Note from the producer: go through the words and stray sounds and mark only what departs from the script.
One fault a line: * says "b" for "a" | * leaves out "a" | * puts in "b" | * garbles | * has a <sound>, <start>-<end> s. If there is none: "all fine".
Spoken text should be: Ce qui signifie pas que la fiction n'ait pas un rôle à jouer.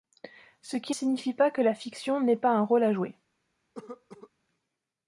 * has a cough, 3.7-4.3 s